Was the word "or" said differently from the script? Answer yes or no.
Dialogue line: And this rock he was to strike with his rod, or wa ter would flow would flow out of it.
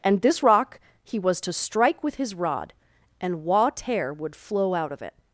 yes